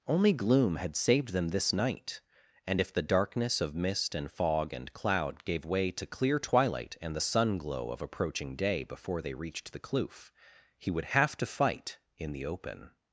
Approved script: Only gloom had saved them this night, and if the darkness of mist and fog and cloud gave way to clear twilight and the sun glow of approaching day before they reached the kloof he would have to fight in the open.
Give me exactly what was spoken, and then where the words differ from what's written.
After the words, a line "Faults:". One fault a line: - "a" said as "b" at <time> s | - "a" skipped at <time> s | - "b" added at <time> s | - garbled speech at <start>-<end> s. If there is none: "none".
Only gloom had saved them this night, and if the darkness of mist and fog and cloud gave way to clear twilight and the sun glow of approaching day before they reached the kloof he would have to fight in the open.
Faults:
none